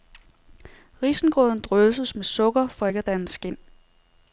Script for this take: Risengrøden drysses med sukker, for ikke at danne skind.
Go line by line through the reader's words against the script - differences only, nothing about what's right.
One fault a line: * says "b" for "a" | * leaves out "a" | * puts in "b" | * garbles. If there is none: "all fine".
all fine